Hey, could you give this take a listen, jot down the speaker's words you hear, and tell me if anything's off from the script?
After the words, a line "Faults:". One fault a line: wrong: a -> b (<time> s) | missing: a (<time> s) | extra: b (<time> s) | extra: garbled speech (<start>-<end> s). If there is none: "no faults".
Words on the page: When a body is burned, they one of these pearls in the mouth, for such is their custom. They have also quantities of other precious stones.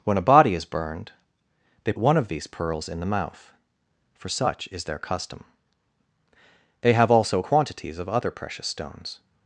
When a body is burned, they one of these pearls in the mouth, for such is their custom. They have also quantities of other precious stones.
Faults:
no faults